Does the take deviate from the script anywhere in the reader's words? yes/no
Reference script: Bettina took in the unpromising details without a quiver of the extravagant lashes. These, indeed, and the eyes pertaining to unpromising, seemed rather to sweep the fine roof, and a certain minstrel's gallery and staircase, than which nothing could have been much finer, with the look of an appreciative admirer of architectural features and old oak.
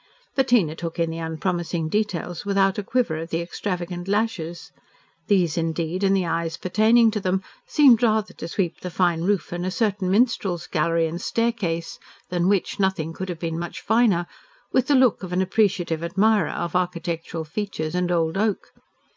yes